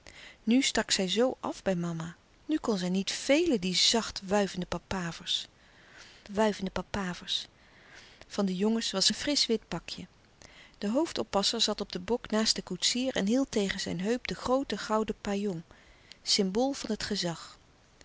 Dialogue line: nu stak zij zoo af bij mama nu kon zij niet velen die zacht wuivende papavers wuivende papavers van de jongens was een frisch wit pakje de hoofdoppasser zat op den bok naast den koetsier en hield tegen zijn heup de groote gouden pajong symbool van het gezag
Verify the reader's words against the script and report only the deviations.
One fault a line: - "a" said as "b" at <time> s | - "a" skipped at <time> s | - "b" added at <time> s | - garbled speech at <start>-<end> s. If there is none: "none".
none